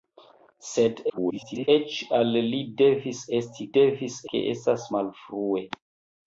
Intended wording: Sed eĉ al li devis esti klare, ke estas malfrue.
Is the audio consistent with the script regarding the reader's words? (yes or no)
no